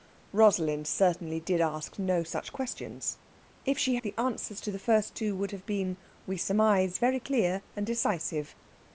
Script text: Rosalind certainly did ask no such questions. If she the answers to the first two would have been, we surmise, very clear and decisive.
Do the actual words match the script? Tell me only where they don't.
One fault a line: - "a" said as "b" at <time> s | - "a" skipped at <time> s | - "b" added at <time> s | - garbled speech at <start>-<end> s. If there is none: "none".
none